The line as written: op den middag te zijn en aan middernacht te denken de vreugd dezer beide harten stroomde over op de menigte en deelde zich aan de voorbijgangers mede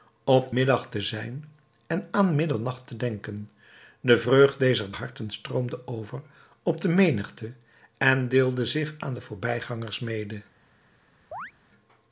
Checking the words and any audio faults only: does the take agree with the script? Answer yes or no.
no